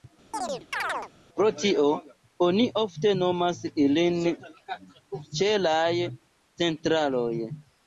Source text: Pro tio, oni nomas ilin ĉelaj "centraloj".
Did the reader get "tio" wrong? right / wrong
right